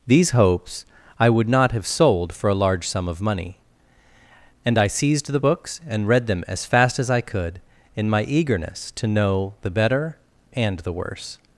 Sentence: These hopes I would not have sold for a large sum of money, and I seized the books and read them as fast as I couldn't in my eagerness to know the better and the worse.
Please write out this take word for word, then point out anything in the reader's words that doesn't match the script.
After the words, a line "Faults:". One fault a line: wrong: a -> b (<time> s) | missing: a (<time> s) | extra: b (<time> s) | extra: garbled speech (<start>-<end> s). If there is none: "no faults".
These hopes I would not have sold for a large sum of money, and I seized the books and read them as fast as I could in my eagerness to know the better and the worse.
Faults:
wrong: couldn't -> could (7.2 s)